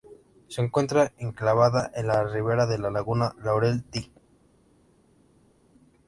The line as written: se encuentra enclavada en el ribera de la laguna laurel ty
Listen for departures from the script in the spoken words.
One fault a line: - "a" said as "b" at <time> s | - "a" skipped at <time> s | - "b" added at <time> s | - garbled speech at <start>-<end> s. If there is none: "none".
- "el" said as "la" at 2.1 s